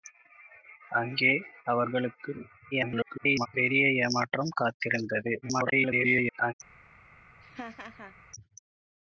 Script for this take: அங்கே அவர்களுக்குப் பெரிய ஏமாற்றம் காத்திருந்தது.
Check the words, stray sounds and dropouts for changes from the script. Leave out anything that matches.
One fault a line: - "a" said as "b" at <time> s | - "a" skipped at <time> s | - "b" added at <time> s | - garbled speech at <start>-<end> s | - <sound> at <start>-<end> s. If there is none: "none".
- garbled speech at 2.7-3.5 s
- garbled speech at 5.4-6.5 s
- laugh at 7.4-8.2 s